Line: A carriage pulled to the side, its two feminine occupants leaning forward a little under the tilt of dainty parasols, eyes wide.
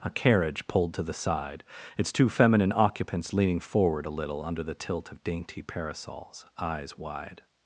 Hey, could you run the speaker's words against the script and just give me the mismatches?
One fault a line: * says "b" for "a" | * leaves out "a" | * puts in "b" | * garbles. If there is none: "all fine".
all fine